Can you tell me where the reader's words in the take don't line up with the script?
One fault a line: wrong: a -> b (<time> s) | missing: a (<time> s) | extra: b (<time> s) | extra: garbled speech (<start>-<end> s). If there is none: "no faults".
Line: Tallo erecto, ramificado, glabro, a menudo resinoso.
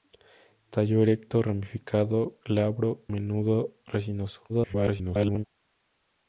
missing: a (3.0 s)
extra: garbled speech (4.5-5.5 s)